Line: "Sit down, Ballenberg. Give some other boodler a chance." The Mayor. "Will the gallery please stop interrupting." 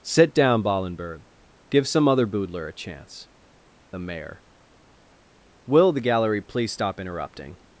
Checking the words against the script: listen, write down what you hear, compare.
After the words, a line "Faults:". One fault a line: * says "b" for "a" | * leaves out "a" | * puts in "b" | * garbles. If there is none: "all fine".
"Sit down, Ballenberg. Give some other boodler a chance." The Mayor. "Will the gallery please stop interrupting."
Faults:
all fine